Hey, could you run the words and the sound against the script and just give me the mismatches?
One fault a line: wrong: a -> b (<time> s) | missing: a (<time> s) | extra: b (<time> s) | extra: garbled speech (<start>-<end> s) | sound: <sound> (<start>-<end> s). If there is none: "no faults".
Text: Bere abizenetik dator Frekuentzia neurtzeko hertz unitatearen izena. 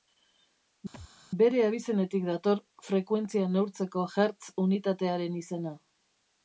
sound: thud (0.9-1.1 s)